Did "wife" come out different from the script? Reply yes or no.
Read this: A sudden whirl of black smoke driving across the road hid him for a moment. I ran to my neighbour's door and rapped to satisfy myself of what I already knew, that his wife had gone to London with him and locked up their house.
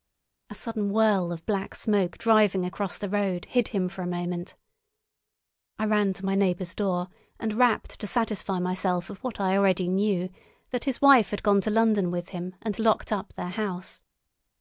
no